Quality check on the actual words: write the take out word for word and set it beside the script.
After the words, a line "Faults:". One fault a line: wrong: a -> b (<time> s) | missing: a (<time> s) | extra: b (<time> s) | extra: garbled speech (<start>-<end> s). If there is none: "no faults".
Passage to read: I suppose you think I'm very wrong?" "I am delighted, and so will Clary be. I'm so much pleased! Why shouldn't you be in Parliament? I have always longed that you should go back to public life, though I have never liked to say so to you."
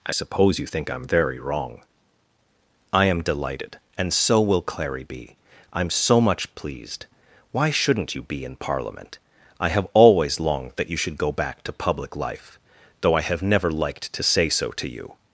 I suppose you think I'm very wrong?" "I am delighted, and so will Clary be. I'm so much pleased! Why shouldn't you be in Parliament? I have always longed that you should go back to public life, though I have never liked to say so to you."
Faults:
no faults